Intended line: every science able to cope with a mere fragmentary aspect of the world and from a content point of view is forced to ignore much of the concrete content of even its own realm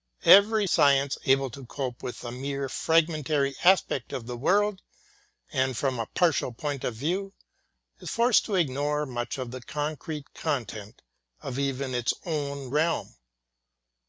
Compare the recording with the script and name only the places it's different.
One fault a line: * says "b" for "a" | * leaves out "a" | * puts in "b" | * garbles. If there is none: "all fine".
* says "partial" for "content"